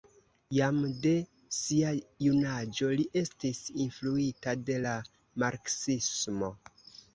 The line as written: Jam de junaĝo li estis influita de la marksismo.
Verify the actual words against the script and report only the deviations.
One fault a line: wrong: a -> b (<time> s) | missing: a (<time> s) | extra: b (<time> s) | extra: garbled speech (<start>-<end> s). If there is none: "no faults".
extra: sia (1.6 s)